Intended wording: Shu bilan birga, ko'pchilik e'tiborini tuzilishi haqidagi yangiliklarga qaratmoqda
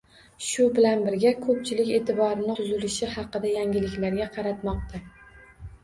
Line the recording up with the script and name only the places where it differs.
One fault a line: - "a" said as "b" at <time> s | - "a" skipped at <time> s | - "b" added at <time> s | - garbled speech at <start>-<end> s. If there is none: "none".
none